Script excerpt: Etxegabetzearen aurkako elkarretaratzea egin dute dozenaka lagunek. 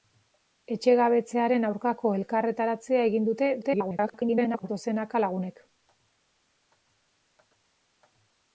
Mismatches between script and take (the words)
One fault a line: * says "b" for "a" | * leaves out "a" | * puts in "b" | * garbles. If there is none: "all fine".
* garbles